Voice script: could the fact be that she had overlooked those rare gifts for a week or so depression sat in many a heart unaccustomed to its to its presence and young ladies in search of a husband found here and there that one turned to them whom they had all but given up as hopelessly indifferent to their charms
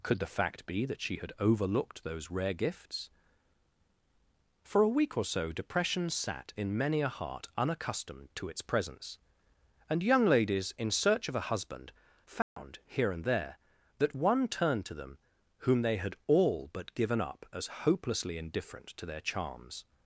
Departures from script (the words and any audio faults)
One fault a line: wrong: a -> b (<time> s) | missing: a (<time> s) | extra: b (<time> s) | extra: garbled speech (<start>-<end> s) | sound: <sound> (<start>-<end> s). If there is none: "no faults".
missing: to its (8.6 s)
sound: dropout (12.4-12.6 s)